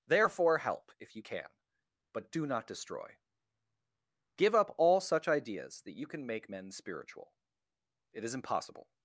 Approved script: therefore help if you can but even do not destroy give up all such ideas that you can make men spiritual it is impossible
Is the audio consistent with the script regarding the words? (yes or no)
no